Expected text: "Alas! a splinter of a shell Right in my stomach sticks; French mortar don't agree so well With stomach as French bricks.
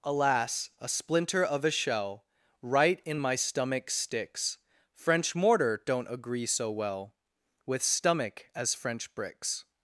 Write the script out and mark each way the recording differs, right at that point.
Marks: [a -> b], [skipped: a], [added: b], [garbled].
"Alas! a splinter of a shell Right in my stomach sticks; French mortar don't agree so well With stomach as French bricks.